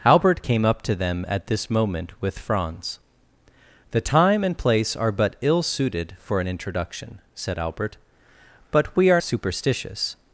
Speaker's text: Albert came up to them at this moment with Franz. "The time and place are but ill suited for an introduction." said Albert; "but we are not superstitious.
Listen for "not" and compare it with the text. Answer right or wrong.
wrong